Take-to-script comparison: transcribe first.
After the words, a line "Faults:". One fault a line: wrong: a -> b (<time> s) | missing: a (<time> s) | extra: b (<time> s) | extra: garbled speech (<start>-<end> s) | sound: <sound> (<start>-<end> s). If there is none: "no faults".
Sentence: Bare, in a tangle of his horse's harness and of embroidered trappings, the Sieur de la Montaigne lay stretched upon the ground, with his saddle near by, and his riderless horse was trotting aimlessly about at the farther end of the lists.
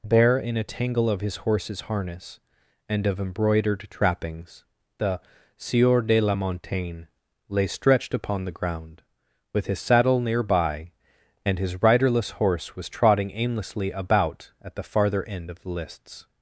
Bare, in a tangle of his horse's harness and of embroidered trappings, the Sieur de la Montaigne lay stretched upon the ground, with his saddle near by, and his riderless horse was trotting aimlessly about at the farther end of the lists.
Faults:
no faults